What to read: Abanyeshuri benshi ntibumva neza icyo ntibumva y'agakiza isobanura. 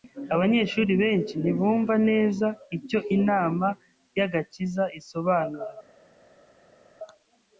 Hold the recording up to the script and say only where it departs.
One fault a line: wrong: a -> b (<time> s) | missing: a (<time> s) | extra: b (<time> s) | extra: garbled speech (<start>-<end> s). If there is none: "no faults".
wrong: ntibumva -> inama (3.2 s)